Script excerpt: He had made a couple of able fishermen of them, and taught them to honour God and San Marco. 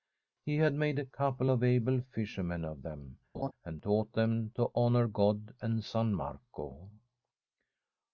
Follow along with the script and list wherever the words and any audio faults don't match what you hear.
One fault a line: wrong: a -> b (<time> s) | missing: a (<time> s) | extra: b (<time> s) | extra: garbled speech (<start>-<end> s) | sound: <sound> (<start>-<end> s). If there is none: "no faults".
sound: laugh (3.3-3.5 s)